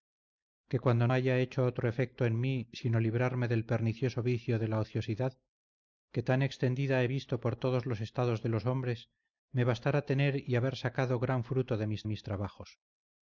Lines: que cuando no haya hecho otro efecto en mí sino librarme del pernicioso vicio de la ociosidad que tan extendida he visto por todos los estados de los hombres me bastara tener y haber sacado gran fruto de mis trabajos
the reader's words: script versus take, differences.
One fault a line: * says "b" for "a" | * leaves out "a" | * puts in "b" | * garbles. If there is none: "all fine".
* leaves out "no"
* puts in "mis"